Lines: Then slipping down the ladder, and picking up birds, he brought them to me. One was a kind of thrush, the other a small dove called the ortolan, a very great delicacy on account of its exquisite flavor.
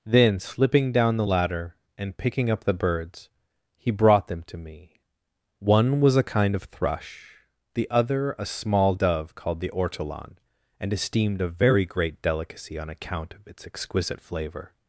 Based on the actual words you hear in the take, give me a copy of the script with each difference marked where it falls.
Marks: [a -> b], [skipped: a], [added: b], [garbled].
Then slipping down the ladder, and picking up [added: the] birds, he brought them to me. One was a kind of thrush, the other a small dove called the ortolan, [added: and esteemed] a very great delicacy on account of its exquisite flavor.